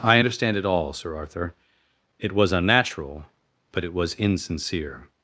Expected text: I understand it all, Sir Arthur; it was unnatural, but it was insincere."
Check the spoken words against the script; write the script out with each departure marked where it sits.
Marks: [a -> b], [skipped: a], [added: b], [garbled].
I understand it all, Sir Arthur; it was unnatural, but it was insincere."